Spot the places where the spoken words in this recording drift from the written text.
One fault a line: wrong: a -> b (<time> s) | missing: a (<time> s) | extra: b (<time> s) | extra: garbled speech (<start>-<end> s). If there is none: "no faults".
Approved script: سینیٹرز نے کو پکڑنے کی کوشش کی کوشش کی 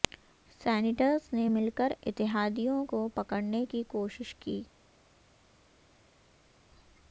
extra: مل کر اتحادیوں (1.5 s)
missing: کوشش کی (4.6 s)